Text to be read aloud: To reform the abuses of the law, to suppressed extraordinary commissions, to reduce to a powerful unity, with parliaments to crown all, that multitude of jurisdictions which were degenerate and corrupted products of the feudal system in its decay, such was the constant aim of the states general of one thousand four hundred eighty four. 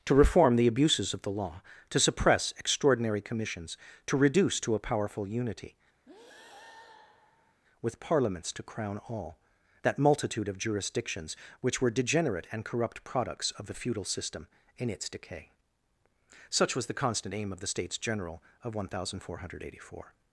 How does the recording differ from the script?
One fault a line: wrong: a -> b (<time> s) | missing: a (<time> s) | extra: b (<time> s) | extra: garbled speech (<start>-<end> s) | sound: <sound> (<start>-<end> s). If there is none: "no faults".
wrong: suppressed -> suppress (2.0 s)
sound: breath (6.1-7.6 s)
wrong: corrupted -> corrupt (12.6 s)